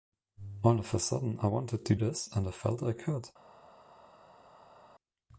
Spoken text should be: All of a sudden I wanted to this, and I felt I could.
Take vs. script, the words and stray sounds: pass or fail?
pass